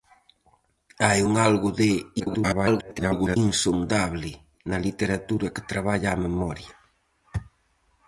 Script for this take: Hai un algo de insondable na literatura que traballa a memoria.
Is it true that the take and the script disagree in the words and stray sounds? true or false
true